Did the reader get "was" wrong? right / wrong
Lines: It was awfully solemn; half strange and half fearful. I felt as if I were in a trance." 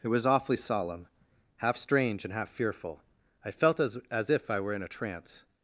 right